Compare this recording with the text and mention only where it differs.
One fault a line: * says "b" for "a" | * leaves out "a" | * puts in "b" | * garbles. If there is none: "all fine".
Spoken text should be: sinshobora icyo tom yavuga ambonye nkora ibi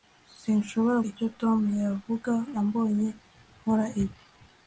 all fine